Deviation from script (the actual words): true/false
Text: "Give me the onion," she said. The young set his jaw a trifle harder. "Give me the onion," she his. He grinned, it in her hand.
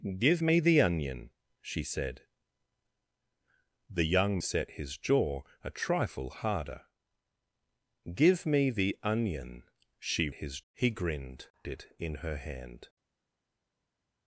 false